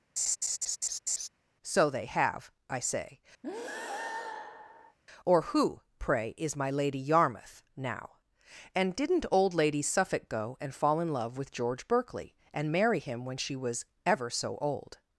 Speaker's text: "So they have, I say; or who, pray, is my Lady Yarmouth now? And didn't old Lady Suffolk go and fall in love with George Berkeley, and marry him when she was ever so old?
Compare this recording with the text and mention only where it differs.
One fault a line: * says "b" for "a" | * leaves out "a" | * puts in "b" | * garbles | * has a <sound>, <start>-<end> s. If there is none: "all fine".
* has a laugh, 0.2-1.3 s
* has a breath, 3.4-5.0 s